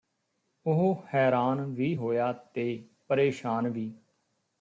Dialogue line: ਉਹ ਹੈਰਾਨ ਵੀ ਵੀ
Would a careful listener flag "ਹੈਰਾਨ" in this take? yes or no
no